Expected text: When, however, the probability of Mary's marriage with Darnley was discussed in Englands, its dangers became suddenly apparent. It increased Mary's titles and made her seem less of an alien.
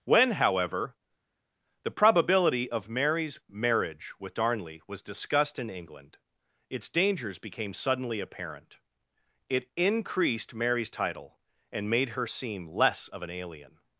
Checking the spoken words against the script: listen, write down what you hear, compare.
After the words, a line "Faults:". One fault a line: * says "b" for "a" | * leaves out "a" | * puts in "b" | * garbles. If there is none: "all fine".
When, however, the probability of Mary's marriage with Darnley was discussed in England, its dangers became suddenly apparent. It increased Mary's title and made her seem less of an alien.
Faults:
* says "England" for "Englands"
* says "title" for "titles"